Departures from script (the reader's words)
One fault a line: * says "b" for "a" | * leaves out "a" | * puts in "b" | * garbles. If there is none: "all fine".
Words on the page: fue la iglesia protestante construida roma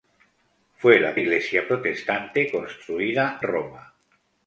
all fine